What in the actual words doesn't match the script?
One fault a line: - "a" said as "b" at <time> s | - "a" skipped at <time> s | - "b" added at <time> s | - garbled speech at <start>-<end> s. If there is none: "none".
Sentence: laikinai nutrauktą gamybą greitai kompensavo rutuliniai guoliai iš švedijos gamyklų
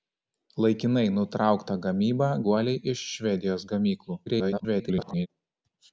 - "greitai kompensavo rutuliniai" skipped at 2.3 s
- garbled speech at 4.3-5.3 s